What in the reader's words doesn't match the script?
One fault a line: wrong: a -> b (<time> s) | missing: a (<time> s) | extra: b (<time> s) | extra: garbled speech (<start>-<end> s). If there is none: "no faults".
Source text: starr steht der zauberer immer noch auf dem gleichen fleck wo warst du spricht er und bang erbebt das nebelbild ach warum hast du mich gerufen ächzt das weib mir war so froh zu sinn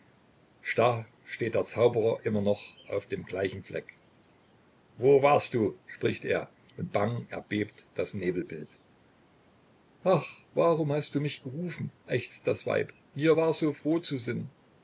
no faults